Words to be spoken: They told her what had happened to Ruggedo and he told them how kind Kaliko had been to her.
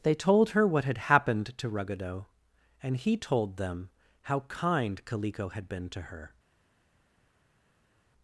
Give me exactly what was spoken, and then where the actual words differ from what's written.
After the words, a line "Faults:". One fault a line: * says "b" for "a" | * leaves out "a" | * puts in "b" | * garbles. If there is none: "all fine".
They told her what had happened to Ruggedo and he told them how kind Kaliko had been to her.
Faults:
all fine